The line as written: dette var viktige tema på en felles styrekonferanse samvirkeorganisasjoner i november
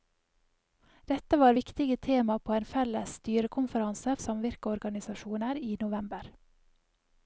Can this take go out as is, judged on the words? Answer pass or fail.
pass